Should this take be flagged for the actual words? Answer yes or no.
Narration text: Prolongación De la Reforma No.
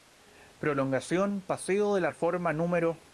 yes